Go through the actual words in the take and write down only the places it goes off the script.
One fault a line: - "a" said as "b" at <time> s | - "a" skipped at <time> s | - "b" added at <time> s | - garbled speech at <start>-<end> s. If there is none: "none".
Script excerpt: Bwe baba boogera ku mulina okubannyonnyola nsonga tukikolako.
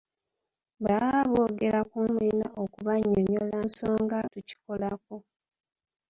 none